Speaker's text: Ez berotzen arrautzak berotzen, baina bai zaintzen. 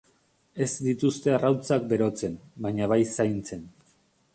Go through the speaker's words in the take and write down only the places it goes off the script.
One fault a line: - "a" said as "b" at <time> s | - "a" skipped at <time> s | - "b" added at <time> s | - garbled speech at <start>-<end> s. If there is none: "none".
- "berotzen" said as "dituzte" at 0.8 s